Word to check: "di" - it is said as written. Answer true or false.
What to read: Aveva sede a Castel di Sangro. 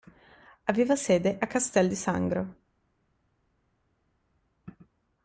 true